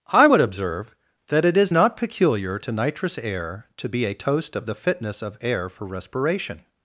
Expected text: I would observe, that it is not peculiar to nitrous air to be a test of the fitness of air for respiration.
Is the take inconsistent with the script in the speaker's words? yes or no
yes